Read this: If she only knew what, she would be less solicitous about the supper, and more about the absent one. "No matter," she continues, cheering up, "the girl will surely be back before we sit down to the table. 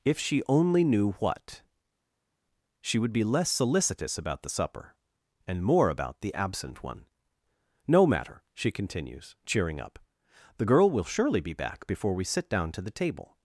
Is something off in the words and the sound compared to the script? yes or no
no